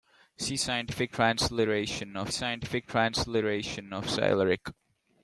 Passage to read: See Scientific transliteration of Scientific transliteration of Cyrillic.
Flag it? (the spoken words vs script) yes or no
no